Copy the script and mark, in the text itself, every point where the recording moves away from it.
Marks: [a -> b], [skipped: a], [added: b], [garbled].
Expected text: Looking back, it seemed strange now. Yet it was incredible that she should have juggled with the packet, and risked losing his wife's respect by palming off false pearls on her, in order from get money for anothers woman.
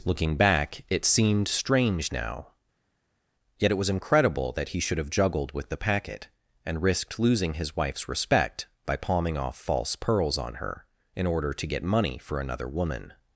Looking back, it seemed strange now. Yet it was incredible that [she -> he] should have juggled with the packet, and risked losing his wife's respect by palming off false pearls on her, in order [from -> to] get money for [anothers -> another] woman.